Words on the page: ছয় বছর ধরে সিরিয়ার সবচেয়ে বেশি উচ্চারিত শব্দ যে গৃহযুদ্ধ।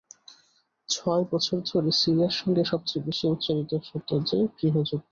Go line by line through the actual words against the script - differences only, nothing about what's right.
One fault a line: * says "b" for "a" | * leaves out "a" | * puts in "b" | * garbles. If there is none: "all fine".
* puts in "সঙ্গে"